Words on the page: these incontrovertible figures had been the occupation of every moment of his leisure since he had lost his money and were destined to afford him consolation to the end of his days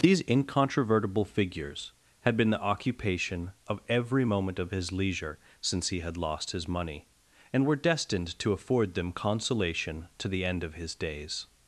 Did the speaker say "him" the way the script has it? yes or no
no